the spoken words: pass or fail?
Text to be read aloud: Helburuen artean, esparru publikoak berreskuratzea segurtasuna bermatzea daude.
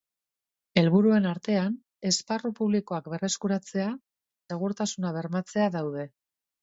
pass